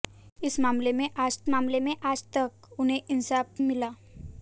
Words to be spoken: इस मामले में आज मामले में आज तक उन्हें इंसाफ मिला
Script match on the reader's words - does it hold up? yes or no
yes